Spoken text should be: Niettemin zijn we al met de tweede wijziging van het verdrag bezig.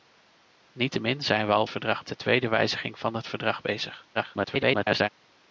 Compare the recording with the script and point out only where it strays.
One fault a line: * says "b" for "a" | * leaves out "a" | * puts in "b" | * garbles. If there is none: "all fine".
* says "verdrag" for "met"
* garbles